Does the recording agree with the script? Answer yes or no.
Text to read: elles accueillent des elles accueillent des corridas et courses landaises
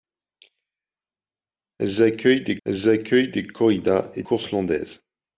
yes